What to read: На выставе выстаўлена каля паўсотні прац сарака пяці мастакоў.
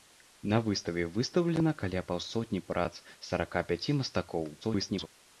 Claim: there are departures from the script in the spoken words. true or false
true